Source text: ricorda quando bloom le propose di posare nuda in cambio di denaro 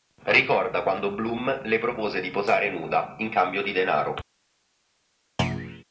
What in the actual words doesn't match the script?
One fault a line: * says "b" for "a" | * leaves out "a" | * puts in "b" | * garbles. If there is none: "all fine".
all fine